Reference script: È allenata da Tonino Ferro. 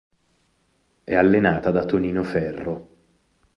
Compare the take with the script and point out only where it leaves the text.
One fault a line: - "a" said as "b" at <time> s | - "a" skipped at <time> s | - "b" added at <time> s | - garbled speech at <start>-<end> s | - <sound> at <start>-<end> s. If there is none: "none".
none